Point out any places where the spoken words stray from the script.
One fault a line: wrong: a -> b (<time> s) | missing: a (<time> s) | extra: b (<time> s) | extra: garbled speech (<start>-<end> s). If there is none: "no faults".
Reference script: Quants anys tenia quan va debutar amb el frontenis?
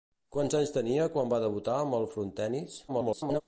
extra: garbled speech (2.9-3.4 s)